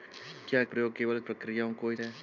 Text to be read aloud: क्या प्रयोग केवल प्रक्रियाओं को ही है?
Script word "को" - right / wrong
right